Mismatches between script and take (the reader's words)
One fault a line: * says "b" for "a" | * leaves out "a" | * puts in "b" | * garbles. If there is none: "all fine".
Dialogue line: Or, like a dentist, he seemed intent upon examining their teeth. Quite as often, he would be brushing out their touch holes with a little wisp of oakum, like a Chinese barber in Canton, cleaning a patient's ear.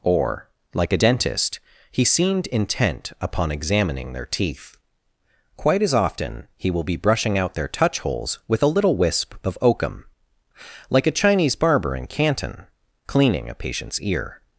* says "will" for "would"